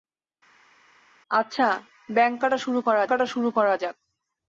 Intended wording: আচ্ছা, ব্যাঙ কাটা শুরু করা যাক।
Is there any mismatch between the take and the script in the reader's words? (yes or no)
yes